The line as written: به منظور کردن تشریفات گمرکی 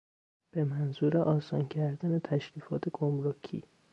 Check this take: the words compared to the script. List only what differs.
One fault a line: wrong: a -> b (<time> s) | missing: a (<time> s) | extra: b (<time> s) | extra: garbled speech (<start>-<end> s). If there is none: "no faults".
extra: آسان (1.2 s)